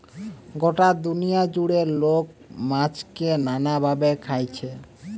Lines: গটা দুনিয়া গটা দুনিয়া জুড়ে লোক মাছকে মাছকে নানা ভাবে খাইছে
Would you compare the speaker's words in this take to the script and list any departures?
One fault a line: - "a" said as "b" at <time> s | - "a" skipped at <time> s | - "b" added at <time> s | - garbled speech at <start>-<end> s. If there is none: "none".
- "গটা দুনিয়া" skipped at 1.4 s
- "মাছকে" skipped at 3.3 s